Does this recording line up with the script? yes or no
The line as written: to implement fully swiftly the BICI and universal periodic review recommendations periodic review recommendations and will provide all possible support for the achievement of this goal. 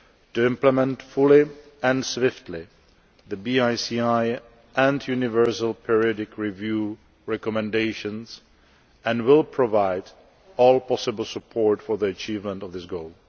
no